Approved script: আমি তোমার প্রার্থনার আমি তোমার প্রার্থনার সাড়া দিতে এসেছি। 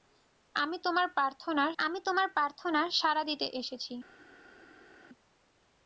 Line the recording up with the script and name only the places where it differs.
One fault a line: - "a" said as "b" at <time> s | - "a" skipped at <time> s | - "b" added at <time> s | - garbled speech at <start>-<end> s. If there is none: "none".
none